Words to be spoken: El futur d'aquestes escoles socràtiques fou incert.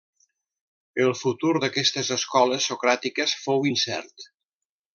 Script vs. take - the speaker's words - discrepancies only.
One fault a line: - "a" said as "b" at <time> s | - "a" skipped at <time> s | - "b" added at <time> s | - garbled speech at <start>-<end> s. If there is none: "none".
none